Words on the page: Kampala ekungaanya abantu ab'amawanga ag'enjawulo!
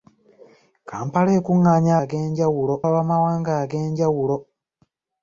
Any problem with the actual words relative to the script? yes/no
yes